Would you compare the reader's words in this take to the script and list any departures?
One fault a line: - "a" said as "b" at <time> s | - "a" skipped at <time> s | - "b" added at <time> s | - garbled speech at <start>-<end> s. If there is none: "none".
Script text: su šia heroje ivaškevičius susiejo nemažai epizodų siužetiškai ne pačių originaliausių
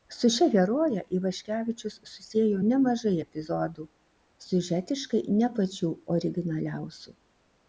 none